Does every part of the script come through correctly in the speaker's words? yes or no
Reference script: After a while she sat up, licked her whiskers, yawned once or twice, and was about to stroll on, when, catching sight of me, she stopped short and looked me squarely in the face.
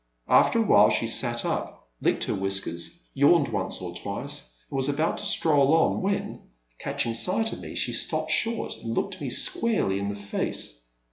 yes